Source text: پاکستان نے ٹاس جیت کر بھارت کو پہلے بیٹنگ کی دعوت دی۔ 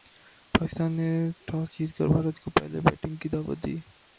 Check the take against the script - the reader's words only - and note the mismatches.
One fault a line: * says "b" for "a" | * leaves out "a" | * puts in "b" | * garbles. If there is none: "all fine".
all fine